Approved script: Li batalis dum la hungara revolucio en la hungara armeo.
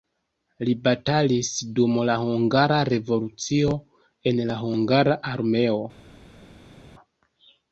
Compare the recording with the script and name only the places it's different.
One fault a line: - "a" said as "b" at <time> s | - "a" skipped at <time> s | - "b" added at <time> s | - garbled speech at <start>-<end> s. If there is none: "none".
none